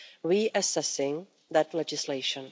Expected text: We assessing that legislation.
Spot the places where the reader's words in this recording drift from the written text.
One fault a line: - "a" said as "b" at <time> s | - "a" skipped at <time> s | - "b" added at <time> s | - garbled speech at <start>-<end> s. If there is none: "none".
none